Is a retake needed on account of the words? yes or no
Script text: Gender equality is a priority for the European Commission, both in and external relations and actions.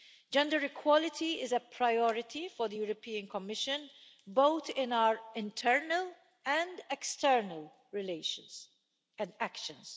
yes